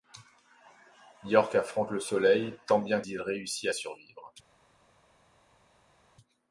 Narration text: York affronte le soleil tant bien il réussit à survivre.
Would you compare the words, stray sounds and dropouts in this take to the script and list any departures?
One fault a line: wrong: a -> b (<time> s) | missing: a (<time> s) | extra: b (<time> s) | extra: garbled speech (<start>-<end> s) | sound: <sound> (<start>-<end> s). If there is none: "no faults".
no faults